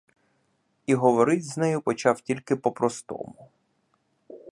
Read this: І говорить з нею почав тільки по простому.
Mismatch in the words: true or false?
false